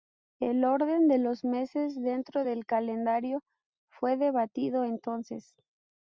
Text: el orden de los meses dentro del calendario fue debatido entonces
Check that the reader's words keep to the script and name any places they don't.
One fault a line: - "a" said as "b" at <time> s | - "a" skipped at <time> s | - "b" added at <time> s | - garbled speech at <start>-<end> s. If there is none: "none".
none